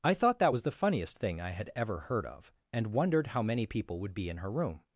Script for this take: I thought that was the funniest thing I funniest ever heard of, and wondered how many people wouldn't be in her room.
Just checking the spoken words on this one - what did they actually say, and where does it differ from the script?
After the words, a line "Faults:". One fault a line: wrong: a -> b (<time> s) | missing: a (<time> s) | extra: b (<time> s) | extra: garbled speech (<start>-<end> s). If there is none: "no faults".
I thought that was the funniest thing I had ever heard of, and wondered how many people would be in her room.
Faults:
wrong: funniest -> had (1.5 s)
wrong: wouldn't -> would (4.0 s)